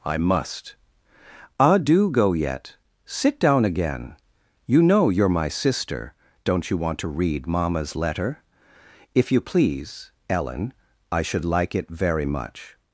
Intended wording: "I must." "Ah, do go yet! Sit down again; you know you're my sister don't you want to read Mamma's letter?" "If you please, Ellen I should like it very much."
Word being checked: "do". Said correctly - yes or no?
yes